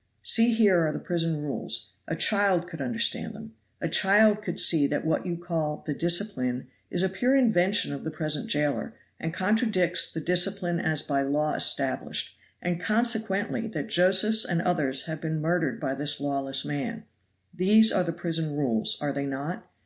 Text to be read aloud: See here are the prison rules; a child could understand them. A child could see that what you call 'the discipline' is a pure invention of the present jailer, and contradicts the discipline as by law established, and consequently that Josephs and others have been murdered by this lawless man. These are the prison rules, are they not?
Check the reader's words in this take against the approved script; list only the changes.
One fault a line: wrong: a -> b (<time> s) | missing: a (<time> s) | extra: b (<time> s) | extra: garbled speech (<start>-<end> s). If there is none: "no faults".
no faults